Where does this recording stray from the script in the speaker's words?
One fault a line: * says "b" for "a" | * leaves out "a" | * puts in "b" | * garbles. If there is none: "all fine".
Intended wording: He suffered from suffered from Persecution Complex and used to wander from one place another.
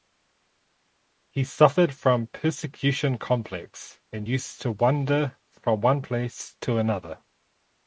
* leaves out "suffered from"
* puts in "to"